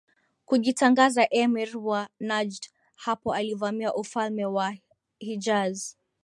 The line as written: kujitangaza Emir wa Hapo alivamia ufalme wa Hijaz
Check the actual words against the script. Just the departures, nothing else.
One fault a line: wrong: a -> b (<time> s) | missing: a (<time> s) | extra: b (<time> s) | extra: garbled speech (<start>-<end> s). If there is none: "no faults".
extra: Najd (2.2 s)